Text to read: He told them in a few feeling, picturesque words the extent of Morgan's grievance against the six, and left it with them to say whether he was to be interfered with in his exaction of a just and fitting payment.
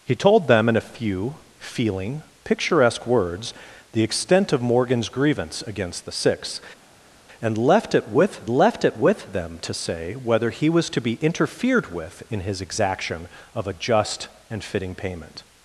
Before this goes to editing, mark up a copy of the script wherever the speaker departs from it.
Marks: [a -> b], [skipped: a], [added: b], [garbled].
He told them in a few feeling, picturesque words the extent of Morgan's grievance against the six, and left it with [added: left it with] them to say whether he was to be interfered with in his exaction of a just and fitting payment.